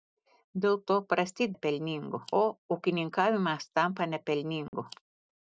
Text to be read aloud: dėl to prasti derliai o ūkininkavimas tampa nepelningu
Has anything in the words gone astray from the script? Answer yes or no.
yes